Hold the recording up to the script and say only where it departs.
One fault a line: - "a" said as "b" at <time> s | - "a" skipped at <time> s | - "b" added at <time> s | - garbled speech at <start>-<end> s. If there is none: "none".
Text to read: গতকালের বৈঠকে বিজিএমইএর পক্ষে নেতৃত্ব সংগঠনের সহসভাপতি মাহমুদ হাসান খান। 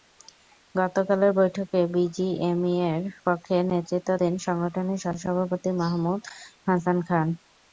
- "দেন" added at 4.2 s